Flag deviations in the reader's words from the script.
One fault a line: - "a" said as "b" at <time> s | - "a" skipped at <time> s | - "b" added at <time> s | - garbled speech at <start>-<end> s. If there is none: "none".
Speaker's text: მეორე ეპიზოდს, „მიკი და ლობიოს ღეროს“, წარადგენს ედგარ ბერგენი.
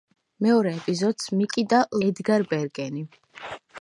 - "ლობიოს ღეროს წარადგენს" skipped at 1.8 s